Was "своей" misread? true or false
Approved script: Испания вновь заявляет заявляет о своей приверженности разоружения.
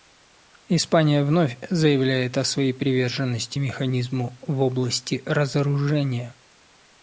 false